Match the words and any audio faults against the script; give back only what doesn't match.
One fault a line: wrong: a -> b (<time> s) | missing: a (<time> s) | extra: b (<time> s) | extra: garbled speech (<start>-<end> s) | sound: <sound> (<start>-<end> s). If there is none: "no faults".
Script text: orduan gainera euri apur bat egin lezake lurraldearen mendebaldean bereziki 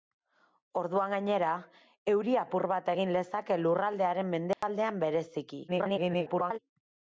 sound: dropout (4.5-4.6 s)
extra: garbled speech (5.7-6.6 s)